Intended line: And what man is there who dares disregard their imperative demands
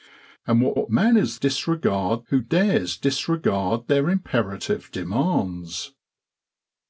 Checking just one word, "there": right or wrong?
wrong